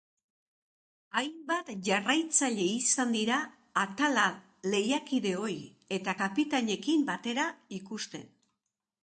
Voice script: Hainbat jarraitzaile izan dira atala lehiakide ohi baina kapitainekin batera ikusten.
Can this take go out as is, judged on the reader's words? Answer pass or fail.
fail